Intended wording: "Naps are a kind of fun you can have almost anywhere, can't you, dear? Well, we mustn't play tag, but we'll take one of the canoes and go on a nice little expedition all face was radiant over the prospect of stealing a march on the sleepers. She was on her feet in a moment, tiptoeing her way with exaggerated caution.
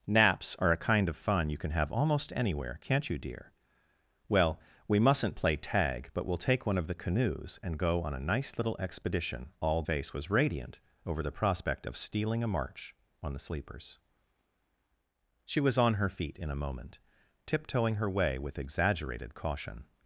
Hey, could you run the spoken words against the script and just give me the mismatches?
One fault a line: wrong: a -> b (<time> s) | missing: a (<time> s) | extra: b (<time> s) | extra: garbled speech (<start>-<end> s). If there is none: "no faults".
no faults